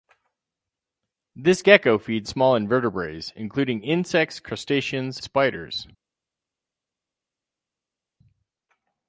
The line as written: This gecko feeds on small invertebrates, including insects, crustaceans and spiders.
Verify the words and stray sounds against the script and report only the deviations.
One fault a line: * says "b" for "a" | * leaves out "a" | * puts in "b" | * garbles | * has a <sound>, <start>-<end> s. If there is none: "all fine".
* leaves out "on"
* leaves out "and"